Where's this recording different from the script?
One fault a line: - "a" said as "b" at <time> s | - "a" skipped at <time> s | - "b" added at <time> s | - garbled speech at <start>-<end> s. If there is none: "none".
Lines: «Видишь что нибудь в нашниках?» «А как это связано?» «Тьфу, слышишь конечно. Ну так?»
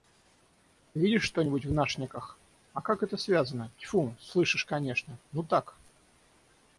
none